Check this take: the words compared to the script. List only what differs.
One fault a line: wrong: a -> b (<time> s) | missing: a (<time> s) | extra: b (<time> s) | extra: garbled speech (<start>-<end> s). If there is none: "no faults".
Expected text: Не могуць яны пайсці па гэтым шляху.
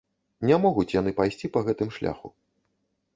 no faults